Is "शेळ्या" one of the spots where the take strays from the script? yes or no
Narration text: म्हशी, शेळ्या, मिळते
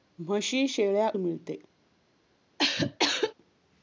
no